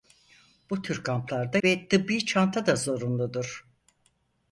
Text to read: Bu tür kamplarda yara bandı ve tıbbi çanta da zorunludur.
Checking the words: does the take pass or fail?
fail